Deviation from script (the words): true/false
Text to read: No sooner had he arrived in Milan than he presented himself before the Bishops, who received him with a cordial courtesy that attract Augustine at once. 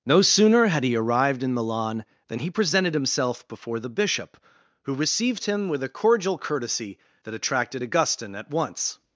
true